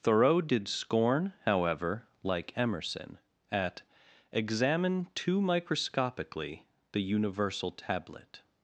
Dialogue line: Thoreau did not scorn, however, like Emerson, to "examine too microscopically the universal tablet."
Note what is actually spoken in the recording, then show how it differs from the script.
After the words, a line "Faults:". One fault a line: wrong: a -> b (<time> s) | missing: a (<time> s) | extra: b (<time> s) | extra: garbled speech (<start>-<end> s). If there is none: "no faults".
Thoreau did scorn, however, like Emerson, at "examine too microscopically the universal tablet."
Faults:
missing: not (0.7 s)
wrong: to -> at (3.5 s)